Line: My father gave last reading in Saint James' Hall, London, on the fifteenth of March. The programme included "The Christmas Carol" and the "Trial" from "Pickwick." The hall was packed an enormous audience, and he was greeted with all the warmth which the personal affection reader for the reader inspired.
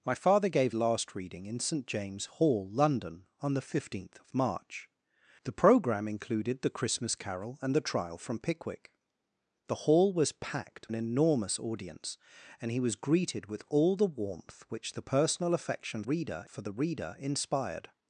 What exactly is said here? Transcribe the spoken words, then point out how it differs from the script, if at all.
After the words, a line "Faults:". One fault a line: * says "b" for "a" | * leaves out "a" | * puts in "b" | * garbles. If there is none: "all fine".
My father gave last reading in Saint James' Hall, London, on the fifteenth of March. The programme included "The Christmas Carol" and the "Trial" from "Pickwick." The hall was packed an enormous audience, and he was greeted with all the warmth which the personal affection reader for the reader inspired.
Faults:
all fine